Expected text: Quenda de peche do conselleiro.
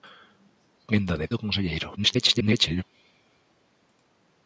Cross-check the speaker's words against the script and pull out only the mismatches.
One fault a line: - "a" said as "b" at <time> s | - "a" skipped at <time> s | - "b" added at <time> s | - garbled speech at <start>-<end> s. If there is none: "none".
- "peche" skipped at 1.3 s
- garbled speech at 2.0-2.8 s